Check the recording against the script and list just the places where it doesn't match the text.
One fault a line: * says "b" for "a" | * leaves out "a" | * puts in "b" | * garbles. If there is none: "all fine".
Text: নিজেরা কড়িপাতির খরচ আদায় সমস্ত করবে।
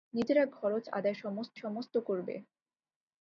* leaves out "কড়িপাতির"
* puts in "সমস্ত"